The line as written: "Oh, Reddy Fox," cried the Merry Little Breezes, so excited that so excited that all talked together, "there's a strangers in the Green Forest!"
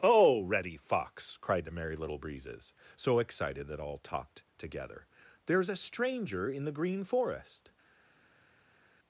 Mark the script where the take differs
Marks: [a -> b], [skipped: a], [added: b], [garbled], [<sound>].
"Oh, Reddy Fox," cried the Merry Little Breezes, so excited that [skipped: so excited that] all talked together, "there's a [strangers -> stranger] in the Green Forest!"